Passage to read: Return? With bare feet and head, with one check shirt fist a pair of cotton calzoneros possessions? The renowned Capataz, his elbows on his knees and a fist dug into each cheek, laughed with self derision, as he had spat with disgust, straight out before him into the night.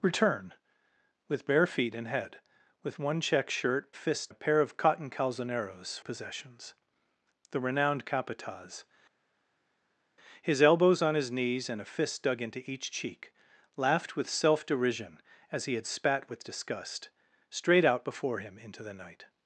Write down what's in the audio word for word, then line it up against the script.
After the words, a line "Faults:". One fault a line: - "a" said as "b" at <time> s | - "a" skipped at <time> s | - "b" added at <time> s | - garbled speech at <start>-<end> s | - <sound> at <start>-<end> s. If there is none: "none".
Return? With bare feet and head, with one check shirt fist a pair of cotton calzoneros possessions? The renowned Capataz, his elbows on his knees and a fist dug into each cheek, laughed with self derision, as he had spat with disgust, straight out before him into the night.
Faults:
none